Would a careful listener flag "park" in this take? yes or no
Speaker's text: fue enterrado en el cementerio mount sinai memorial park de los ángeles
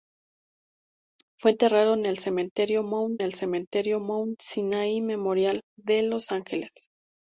yes